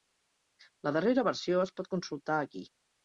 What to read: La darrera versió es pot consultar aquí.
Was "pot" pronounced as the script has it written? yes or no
yes